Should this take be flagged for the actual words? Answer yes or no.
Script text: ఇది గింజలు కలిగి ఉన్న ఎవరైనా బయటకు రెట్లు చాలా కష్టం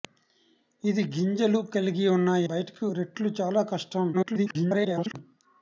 yes